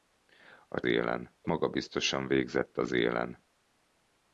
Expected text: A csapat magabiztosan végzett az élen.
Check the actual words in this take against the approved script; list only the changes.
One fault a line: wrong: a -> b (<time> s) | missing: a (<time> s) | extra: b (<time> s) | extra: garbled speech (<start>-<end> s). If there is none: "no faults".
wrong: csapat -> élen (0.8 s)